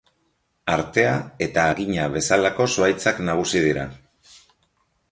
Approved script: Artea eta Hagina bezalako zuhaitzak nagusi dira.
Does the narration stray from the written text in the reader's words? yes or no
no